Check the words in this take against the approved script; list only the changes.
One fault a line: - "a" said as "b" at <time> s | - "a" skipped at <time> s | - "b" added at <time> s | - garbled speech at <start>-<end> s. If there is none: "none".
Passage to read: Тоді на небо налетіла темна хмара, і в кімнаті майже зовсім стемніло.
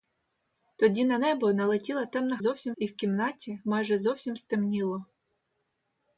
- "хмара" said as "зовсім" at 2.4 s